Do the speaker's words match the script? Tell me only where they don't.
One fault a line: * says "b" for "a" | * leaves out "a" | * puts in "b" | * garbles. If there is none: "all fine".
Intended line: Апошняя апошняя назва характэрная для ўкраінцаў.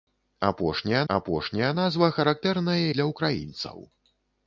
all fine